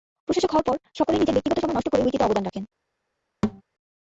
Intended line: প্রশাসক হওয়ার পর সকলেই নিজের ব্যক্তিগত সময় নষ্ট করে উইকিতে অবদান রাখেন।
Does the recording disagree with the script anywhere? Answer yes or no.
no